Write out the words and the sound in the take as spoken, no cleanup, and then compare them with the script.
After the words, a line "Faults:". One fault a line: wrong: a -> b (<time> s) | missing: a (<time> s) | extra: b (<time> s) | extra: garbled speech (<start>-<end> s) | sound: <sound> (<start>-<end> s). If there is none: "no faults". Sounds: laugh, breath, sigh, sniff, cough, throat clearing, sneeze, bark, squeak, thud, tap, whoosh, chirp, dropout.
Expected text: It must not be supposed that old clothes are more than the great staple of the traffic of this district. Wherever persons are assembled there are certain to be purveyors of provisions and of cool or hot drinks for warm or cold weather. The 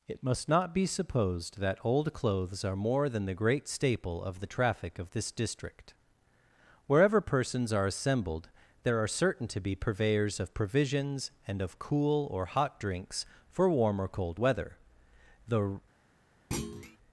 It must not be supposed that old clothes are more than the great staple of the traffic of this district. Wherever persons are assembled there are certain to be purveyors of provisions and of cool or hot drinks for warm or cold weather. The
Faults:
sound: thud (16.5-17.0 s)